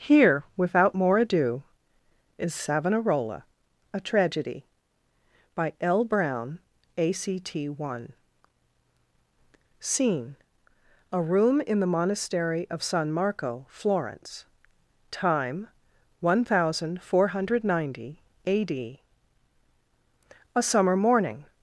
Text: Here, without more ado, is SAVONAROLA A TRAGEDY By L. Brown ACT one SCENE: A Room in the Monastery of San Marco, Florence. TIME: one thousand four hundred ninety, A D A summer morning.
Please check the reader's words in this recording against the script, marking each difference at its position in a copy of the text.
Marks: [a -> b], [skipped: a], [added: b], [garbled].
Here, without more ado, is SAVONAROLA A TRAGEDY By L. Brown ACT one SCENE: A Room in the Monastery of San Marco, Florence. TIME: one thousand four hundred ninety, A D A summer morning.